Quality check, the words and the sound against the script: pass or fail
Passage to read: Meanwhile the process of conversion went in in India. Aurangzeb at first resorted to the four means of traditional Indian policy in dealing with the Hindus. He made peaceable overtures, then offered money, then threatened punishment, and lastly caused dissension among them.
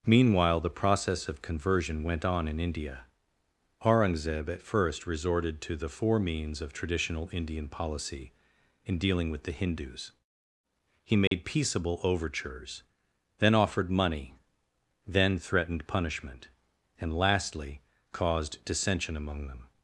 fail